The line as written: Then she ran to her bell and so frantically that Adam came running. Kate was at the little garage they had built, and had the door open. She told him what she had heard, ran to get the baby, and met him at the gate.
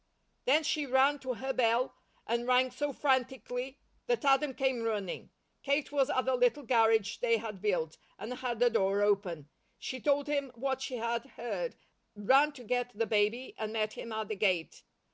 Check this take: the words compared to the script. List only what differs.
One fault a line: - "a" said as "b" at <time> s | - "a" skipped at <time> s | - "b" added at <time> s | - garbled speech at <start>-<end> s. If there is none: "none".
- "rang" added at 2.5 s